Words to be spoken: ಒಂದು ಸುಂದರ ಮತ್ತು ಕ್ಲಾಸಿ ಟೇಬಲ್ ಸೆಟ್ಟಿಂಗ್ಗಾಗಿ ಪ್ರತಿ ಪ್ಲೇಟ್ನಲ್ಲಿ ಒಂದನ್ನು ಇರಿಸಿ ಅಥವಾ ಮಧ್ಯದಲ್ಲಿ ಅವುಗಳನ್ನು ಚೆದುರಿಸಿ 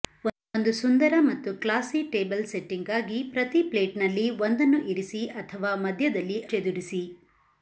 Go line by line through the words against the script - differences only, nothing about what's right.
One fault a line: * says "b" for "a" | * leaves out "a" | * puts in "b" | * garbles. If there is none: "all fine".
* leaves out "ಅವುಗಳನ್ನು"